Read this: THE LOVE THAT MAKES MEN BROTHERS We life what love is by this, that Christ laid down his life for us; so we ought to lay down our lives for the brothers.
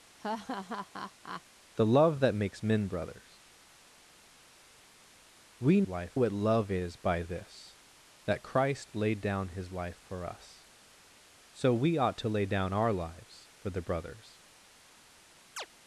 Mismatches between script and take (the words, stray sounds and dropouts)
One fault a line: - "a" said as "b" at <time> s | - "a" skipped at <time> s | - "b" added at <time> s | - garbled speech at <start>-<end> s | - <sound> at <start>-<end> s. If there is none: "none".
- laugh at 0.2-1.4 s
- chirp at 15.6-15.7 s